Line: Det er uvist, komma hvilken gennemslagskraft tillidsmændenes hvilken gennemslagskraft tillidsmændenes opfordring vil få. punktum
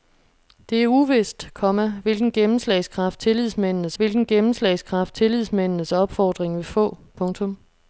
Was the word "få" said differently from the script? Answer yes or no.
no